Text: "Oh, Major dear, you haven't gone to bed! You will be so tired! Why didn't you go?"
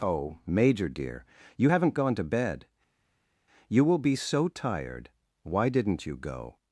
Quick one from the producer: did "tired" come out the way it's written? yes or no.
yes